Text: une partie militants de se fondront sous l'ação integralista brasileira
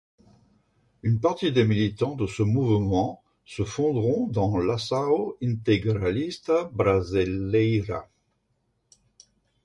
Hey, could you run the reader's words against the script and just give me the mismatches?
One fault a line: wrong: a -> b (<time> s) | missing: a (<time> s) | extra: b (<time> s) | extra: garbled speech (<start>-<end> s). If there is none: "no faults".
extra: des (1.5 s)
extra: ce mouvement (2.2 s)
wrong: sous -> dans (4.2 s)